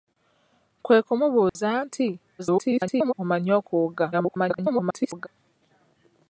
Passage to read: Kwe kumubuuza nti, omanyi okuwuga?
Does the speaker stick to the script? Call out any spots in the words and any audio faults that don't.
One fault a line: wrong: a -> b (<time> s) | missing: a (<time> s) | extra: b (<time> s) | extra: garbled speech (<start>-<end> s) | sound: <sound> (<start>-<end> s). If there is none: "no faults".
sound: dropout (1.5-1.6 s)
extra: garbled speech (2.4-3.1 s)
extra: garbled speech (4.1-5.3 s)